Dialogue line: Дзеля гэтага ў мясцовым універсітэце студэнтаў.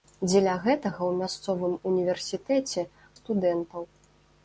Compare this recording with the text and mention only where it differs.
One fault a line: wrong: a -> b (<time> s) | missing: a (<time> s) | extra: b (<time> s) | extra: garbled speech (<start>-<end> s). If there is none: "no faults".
no faults